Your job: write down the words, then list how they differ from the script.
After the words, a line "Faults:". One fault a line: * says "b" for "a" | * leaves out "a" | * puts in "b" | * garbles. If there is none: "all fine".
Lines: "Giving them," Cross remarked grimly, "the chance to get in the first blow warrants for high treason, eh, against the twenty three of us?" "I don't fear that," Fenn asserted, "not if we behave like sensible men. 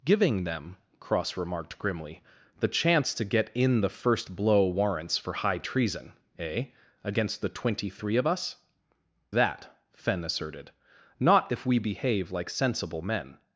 "Giving them," Cross remarked grimly, "the chance to get in the first blow warrants for high treason, eh, against the twenty three of us?" "that," Fenn asserted, "not if we behave like sensible men.
Faults:
* leaves out "I don't fear"